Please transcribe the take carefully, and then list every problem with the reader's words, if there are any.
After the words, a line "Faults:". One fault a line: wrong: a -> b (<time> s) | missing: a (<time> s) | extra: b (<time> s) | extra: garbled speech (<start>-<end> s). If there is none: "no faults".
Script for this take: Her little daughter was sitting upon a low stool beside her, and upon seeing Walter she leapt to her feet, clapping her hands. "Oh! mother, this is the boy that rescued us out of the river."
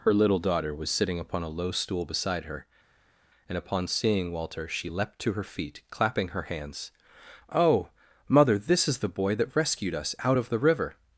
Her little daughter was sitting upon a low stool beside her, and upon seeing Walter she leapt to her feet, clapping her hands. "Oh! mother, this is the boy that rescued us out of the river."
Faults:
no faults